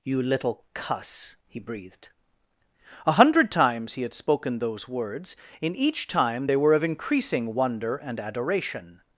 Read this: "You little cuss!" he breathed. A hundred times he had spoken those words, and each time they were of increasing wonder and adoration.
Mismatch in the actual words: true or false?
true